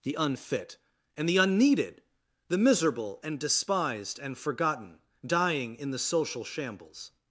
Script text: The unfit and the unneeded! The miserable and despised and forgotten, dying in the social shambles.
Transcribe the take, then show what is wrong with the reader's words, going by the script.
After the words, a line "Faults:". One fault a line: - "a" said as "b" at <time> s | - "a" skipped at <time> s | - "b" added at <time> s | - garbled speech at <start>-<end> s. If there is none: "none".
The unfit and the unneeded! The miserable and despised and forgotten, dying in the social shambles.
Faults:
none